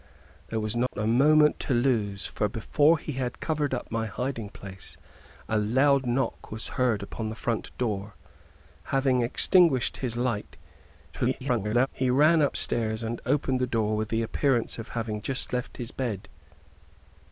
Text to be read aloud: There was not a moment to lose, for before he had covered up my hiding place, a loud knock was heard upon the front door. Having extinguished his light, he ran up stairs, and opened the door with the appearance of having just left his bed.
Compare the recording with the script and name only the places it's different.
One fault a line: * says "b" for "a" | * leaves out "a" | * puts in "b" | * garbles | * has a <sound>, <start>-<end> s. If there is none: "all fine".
* has a dropout, 0.9-0.9 s
* garbles